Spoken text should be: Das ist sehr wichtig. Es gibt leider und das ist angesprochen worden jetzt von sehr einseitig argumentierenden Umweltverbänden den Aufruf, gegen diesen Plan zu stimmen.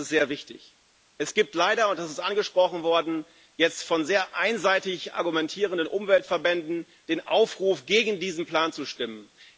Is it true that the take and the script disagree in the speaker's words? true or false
false